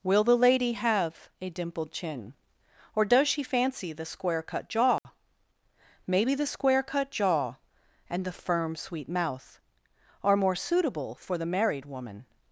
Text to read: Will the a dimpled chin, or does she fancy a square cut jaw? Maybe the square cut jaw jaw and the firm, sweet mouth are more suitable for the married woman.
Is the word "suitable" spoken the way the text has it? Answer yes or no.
yes